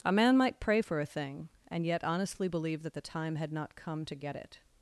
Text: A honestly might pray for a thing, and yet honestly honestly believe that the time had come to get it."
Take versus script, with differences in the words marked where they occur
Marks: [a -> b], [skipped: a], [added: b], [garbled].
A [honestly -> man] might pray for a thing, and yet honestly [skipped: honestly] believe that the time had [added: not] come to get it."